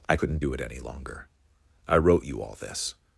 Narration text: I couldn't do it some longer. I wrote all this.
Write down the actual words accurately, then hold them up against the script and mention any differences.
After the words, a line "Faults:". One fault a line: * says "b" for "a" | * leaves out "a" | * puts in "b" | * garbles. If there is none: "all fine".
I couldn't do it any longer. I wrote you all this.
Faults:
* says "any" for "some"
* puts in "you"